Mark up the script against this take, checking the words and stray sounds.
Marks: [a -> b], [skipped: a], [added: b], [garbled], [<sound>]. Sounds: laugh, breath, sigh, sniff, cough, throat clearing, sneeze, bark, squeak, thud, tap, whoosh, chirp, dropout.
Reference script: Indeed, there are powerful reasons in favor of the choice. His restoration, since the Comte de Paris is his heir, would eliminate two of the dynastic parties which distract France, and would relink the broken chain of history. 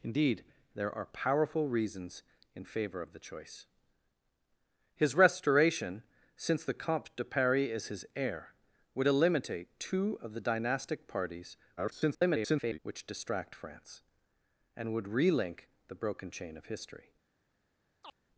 Indeed, there are powerful reasons in favor of the choice. His restoration, since the Comte de Paris is his heir, would eliminate two of the dynastic parties [garbled] which distract France, and would relink the broken chain of history. [chirp]